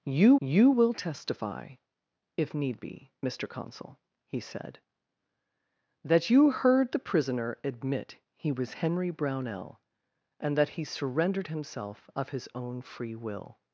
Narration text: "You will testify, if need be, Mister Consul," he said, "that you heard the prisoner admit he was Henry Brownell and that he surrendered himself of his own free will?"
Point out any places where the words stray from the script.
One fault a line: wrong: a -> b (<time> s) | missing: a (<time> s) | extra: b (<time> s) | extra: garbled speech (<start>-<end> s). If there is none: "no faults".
extra: you (0.4 s)